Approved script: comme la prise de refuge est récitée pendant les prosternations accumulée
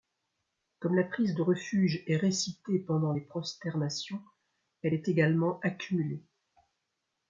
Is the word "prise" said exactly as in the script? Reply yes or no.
yes